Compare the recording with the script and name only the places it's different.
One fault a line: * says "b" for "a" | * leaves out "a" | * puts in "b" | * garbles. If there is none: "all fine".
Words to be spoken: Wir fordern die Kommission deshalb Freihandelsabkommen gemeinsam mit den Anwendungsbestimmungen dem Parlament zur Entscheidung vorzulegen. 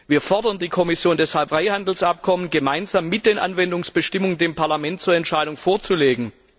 all fine